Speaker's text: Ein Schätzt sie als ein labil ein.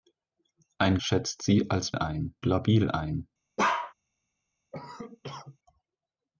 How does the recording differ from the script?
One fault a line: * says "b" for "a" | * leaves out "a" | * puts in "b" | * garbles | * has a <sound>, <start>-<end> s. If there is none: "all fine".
* has a bark, 3.6-3.9 s
* has a cough, 4.7-5.6 s